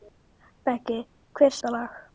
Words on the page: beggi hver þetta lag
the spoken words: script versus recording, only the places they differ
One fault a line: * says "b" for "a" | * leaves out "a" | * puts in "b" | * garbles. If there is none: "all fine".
all fine